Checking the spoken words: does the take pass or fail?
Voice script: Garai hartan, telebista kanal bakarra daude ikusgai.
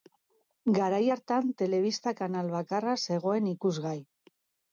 fail